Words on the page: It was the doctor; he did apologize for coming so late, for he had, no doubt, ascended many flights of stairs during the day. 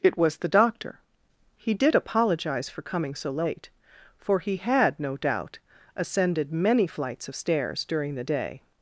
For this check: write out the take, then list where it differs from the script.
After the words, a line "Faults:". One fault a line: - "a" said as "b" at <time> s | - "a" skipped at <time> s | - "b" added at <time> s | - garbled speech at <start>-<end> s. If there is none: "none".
It was the doctor; he did apologize for coming so late, for he had, no doubt, ascended many flights of stairs during the day.
Faults:
none